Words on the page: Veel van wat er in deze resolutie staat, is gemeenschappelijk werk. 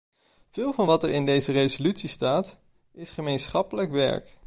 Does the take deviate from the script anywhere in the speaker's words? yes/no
no